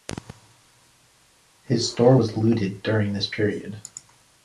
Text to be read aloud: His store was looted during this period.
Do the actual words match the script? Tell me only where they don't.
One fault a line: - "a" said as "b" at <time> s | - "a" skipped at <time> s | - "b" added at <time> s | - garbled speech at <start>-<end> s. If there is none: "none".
none